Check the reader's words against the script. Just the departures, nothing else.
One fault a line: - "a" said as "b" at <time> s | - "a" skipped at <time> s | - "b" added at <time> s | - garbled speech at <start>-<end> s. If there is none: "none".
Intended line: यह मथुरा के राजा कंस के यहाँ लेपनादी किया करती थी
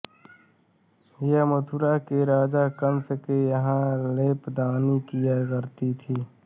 none